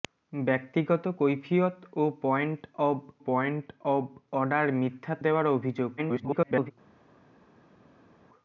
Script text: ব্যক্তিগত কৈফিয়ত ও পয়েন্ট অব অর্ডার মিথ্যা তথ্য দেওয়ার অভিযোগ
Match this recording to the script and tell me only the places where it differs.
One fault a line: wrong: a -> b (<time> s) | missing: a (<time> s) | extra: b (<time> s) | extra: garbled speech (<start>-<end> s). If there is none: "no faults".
extra: পয়েন্ট অব (3.3 s)
missing: তথ্য (5.1 s)
extra: garbled speech (6.0-6.7 s)